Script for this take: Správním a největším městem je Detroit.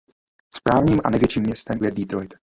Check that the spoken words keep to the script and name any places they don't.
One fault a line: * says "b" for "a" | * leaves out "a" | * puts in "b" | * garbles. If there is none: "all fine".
all fine